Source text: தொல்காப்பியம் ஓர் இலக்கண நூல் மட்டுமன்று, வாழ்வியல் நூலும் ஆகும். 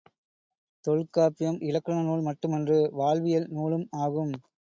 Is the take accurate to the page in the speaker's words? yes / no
no